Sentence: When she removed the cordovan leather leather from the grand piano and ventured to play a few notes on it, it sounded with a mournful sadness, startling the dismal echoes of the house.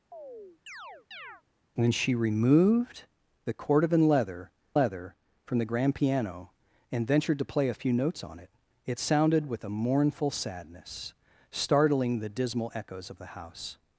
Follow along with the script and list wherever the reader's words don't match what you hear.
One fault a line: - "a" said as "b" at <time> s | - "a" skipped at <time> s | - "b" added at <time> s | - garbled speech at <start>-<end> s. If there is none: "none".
none